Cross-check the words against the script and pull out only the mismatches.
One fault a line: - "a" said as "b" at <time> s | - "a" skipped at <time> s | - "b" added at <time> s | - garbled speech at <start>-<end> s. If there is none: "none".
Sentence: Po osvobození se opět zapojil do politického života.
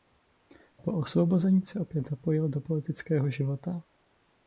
none